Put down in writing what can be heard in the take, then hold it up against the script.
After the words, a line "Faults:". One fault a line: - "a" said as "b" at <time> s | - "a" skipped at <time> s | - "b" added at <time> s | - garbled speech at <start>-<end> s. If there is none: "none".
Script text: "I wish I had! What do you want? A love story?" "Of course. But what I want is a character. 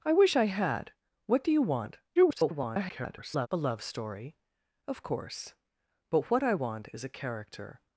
"I wish I had! What do you want? [garbled] A love story?" "Of course. But what I want is a character.
Faults:
- garbled speech at 2.2-3.5 s